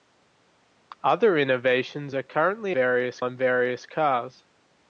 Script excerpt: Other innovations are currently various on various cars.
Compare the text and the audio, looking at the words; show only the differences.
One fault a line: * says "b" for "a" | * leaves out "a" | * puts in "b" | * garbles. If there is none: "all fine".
all fine